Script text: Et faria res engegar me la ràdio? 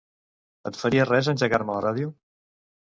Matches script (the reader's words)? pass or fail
pass